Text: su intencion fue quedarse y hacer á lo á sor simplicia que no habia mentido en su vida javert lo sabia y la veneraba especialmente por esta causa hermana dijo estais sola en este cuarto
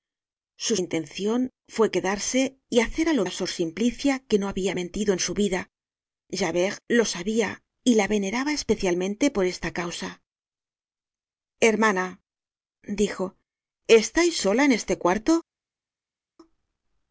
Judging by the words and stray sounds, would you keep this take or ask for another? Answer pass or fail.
pass